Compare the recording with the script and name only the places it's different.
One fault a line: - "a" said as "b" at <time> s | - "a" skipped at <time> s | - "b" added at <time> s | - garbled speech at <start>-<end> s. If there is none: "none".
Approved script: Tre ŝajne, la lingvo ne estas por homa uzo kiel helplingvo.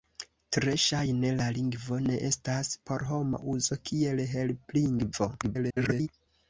- garbled speech at 5.4-6.1 s